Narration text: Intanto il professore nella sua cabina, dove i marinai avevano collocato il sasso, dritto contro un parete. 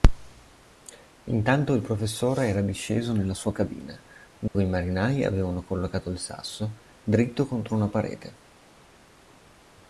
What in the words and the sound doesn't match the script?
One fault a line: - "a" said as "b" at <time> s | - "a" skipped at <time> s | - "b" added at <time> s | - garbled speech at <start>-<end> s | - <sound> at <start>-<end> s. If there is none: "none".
- "era disceso" added at 2.5 s
- dropout at 4.5-4.5 s
- "un" said as "una" at 7.8 s